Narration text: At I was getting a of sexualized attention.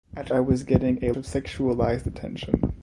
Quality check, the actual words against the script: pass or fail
pass